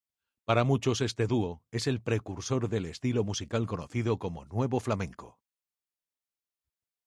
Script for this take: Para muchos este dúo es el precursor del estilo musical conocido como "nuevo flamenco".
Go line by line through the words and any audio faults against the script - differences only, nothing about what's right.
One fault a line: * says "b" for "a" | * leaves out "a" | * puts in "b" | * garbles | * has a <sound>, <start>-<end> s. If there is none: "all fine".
all fine